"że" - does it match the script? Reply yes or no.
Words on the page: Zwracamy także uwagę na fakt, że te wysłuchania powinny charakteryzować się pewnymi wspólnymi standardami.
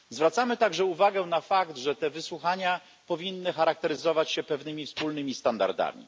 yes